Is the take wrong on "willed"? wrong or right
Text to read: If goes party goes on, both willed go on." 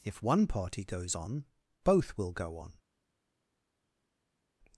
wrong